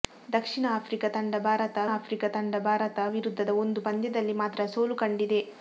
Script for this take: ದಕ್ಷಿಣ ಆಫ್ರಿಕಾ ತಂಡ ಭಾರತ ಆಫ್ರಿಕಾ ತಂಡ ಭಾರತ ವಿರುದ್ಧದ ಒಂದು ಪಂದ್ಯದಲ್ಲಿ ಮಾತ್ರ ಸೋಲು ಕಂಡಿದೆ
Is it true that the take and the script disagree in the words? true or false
false